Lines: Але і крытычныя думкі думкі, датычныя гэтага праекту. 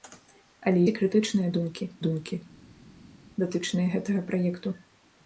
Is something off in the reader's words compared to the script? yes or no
no